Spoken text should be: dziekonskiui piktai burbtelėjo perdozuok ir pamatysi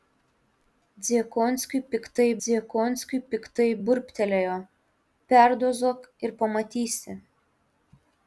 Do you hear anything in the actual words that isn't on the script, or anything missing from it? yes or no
yes